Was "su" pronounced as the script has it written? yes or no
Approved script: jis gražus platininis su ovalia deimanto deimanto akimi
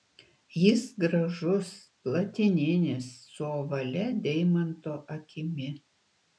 yes